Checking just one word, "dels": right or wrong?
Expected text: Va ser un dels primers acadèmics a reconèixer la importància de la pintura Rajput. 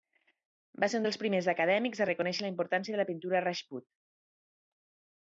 right